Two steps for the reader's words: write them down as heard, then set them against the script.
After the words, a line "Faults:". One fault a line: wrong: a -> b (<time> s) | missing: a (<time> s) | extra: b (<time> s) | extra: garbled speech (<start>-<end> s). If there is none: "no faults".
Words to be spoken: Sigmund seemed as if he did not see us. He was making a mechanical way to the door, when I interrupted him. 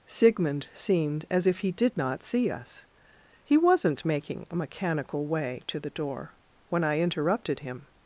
Sigmund seemed as if he did not see us. He wasn't making a mechanical way to the door, when I interrupted him.
Faults:
wrong: was -> wasn't (3.6 s)